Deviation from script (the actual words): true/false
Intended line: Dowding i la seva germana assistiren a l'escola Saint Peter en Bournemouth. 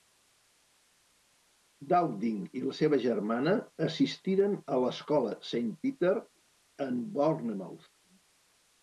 false